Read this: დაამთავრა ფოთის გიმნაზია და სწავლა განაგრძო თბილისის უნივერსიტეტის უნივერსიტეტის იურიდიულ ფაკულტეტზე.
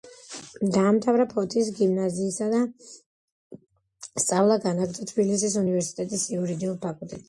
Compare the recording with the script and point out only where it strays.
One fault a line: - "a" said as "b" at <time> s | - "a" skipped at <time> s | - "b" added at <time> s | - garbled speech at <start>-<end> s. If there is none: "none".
- "უნივერსიტეტის" skipped at 6.3 s